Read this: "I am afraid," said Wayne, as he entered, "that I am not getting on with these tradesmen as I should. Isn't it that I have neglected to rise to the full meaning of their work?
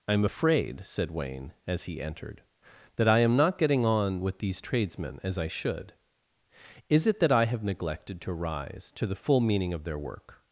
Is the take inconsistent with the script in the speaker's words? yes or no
yes